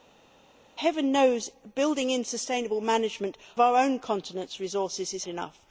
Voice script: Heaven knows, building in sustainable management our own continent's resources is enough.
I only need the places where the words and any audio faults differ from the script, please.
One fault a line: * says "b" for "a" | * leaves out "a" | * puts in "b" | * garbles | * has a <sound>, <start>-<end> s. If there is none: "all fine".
all fine